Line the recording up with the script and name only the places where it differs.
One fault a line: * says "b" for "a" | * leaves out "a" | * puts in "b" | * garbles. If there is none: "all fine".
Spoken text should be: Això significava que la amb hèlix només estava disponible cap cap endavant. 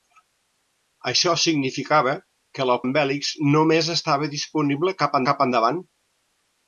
all fine